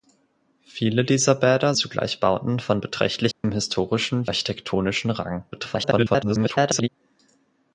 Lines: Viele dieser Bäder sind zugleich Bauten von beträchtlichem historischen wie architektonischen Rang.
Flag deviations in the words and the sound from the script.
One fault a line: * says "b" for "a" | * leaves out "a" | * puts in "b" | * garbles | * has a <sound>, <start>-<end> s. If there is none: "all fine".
* leaves out "sind"
* has a dropout, 3.3-3.4 s
* leaves out "wie"
* garbles